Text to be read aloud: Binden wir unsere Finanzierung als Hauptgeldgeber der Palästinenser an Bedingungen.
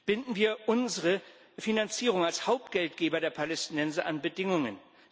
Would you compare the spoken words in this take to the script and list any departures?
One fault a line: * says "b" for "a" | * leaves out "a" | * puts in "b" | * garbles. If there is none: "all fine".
all fine